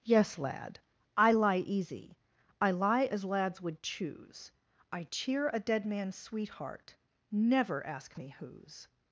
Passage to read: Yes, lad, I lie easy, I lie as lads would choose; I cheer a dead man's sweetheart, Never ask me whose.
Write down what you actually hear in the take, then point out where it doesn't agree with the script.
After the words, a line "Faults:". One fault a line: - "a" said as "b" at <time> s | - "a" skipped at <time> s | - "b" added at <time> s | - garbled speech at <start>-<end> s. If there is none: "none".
Yes, lad, I lie easy, I lie as lads would choose; I cheer a dead man's sweetheart, Never ask me whose.
Faults:
none